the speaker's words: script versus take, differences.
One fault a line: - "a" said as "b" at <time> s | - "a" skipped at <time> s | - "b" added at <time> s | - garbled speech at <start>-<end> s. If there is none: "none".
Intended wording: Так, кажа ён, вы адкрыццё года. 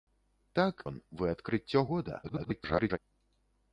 - "кажа" skipped at 0.8 s
- garbled speech at 2.2-3.0 s